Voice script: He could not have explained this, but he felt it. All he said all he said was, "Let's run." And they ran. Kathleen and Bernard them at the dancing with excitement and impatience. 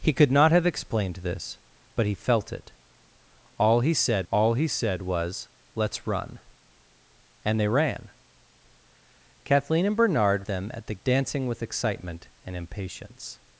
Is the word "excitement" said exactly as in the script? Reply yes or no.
yes